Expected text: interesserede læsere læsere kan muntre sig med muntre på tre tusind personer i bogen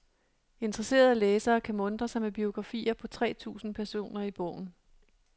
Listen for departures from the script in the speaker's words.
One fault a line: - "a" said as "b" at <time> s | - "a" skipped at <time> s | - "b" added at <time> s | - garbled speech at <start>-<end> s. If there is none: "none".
- "læsere" skipped at 1.6 s
- "muntre" said as "biografier" at 2.3 s